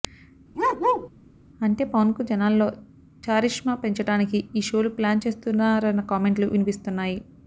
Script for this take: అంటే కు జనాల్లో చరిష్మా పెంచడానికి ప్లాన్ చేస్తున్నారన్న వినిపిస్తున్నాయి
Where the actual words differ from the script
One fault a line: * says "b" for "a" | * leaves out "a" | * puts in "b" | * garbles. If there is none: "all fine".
* puts in "పవన్"
* puts in "ఈ షోలు"
* puts in "కామెంట్లు"